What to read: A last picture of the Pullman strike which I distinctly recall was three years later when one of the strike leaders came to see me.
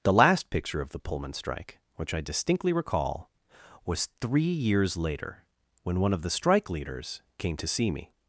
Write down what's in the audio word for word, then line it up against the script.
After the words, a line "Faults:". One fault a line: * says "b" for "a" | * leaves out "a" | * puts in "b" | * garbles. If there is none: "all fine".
The last picture of the Pullman strike which I distinctly recall was three years later when one of the strike leaders came to see me.
Faults:
* says "The" for "A"